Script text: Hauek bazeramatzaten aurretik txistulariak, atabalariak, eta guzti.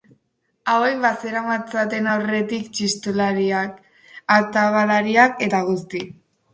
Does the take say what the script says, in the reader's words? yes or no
yes